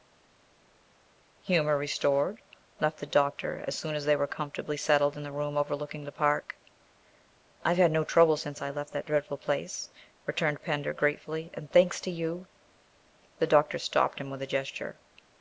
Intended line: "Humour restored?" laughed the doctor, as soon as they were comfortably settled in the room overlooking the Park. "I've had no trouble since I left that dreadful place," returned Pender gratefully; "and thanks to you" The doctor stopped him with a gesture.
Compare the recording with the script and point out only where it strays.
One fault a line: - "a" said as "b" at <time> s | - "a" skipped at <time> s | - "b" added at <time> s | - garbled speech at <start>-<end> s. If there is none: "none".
none